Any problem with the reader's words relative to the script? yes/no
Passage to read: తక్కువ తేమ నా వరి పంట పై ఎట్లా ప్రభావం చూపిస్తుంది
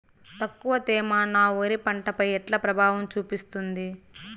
no